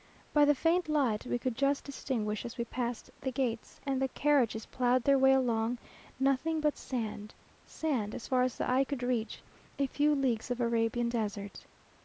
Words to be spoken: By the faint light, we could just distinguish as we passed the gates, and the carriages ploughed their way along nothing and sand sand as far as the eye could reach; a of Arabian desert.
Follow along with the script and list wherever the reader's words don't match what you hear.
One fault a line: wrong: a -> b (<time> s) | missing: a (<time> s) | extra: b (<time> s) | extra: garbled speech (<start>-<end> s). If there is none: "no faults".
wrong: and -> but (6.6 s)
extra: few leagues (9.9 s)